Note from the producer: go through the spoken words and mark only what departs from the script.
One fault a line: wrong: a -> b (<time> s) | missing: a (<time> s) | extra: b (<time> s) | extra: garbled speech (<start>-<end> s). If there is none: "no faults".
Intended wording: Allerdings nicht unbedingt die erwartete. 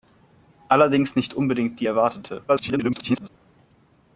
extra: garbled speech (2.5-3.3 s)